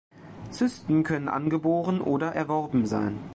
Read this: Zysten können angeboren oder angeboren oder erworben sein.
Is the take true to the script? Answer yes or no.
no